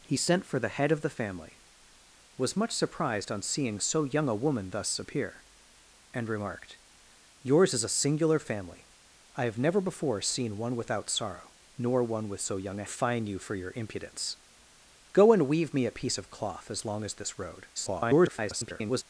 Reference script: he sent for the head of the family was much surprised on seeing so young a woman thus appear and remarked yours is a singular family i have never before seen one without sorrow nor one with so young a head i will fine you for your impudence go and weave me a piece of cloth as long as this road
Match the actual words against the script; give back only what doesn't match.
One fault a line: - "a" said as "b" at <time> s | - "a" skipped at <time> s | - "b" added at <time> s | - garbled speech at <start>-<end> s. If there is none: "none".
- "head i will" skipped at 12.8 s
- garbled speech at 17.7-19.0 s